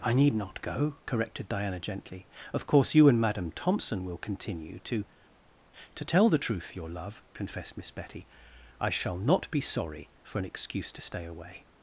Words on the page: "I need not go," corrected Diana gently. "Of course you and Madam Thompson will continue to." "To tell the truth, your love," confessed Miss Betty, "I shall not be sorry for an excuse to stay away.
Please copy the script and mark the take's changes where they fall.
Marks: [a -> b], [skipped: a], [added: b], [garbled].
"I need not go," corrected Diana gently. "Of course you and Madam Thompson will continue to." "To tell the truth, your love," confessed Miss Betty, "I shall not be sorry for an excuse to stay away.